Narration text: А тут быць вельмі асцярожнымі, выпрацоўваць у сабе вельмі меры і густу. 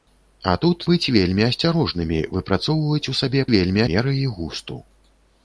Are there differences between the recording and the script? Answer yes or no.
no